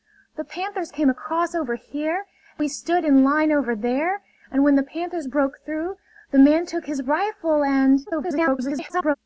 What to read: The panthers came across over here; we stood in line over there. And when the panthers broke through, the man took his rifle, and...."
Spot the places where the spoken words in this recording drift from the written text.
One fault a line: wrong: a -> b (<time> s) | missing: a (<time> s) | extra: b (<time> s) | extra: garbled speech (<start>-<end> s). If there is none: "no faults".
extra: garbled speech (8.1-9.2 s)